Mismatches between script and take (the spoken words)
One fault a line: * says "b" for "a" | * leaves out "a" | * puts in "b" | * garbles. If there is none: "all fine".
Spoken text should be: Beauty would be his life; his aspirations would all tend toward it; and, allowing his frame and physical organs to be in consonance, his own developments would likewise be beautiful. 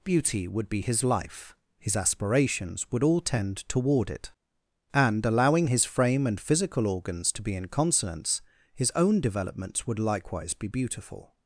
all fine